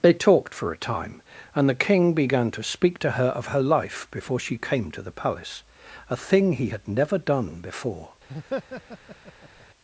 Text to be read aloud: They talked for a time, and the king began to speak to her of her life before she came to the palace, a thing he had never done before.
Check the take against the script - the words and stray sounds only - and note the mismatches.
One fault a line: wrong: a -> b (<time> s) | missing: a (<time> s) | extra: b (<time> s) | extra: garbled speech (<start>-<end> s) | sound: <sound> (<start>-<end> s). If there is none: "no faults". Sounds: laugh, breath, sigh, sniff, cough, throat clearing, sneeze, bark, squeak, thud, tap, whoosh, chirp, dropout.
sound: laugh (8.3-9.7 s)